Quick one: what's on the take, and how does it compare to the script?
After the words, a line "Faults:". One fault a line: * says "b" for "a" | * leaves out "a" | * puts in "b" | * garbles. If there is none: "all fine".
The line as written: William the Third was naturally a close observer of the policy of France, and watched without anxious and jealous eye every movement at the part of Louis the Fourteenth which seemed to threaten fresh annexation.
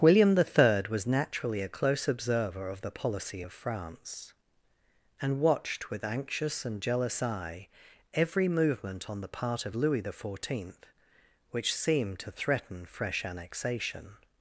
William the Third was naturally a close observer of the policy of France, and watched with anxious and jealous eye every movement on the part of Louis the Fourteenth which seemed to threaten fresh annexation.
Faults:
* says "with" for "without"
* says "on" for "at"